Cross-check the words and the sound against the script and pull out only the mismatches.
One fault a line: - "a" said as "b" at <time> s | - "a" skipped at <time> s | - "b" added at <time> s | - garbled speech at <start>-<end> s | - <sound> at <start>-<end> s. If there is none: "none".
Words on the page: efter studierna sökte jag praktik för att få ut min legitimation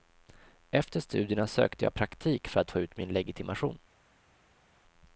none